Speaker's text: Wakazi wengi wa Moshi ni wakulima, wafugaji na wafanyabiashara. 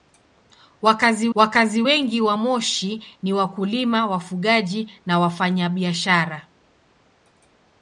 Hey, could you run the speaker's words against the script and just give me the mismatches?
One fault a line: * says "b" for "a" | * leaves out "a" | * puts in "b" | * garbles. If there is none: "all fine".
* puts in "wakazi"